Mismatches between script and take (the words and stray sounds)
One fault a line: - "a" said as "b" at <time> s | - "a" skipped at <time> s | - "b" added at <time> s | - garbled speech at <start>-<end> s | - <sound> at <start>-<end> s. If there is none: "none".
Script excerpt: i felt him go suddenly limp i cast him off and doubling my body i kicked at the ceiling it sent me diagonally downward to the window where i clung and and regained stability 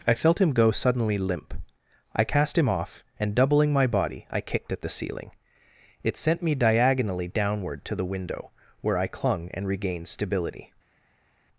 - "and" skipped at 9.7 s